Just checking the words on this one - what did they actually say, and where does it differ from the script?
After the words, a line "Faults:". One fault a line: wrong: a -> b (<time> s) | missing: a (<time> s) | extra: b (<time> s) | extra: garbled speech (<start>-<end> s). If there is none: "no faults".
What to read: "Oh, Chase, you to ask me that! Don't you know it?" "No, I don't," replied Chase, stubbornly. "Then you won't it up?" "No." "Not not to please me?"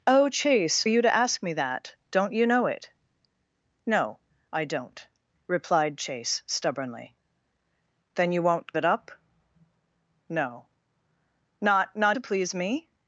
"Oh, Chase, you to ask me that! Don't you know it?" "No, I don't," replied Chase, stubbornly. "Then you won't it up?" "No." "Not not to please me?"
Faults:
no faults